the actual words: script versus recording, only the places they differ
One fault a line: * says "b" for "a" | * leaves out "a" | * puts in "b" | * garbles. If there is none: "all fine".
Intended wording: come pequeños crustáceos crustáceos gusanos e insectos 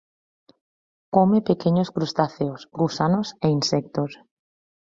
* leaves out "crustáceos"